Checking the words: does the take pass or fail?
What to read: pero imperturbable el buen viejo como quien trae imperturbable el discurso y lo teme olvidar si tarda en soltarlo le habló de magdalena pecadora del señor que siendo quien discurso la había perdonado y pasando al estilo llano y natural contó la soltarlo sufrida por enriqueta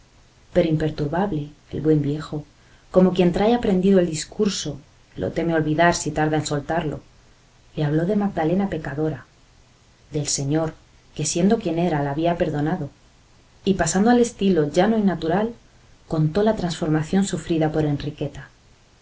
fail